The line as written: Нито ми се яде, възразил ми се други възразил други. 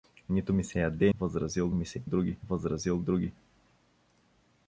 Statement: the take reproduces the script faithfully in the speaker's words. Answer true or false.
true